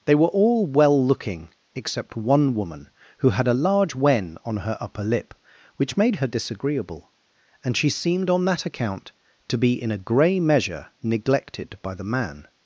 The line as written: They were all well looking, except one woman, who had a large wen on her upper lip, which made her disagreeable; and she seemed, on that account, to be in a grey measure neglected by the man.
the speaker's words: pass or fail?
pass